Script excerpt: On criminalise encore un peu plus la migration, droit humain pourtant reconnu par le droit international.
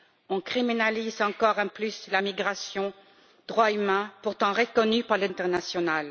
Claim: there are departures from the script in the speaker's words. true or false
true